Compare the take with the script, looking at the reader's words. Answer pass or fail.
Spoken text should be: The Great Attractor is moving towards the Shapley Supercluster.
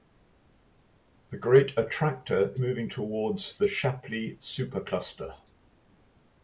fail